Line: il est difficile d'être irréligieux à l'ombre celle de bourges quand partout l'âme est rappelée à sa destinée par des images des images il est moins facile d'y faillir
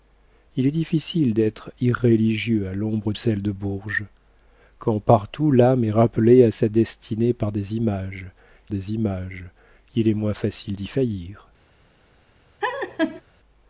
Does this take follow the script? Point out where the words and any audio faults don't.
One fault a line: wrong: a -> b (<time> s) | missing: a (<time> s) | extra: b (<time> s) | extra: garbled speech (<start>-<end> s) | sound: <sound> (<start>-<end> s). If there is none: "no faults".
sound: laugh (12.6-13.2 s)